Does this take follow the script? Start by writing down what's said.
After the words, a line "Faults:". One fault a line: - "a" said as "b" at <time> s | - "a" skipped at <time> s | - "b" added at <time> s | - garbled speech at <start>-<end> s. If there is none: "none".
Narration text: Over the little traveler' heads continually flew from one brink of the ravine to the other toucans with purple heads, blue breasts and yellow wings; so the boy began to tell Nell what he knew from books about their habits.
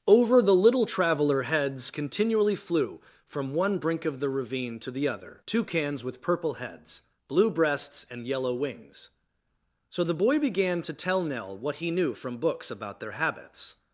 Over the little traveler' heads continually flew from one brink of the ravine to the other toucans with purple heads, blue breasts and yellow wings; so the boy began to tell Nell what he knew from books about their habits.
Faults:
none